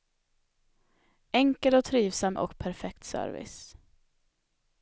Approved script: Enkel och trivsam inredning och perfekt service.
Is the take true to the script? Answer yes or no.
no